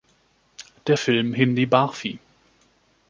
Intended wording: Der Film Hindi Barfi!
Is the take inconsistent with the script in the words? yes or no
no